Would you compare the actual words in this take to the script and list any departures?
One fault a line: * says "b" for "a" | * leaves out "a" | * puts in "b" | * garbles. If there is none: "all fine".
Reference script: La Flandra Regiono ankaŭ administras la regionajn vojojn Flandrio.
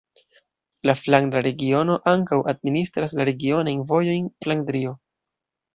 all fine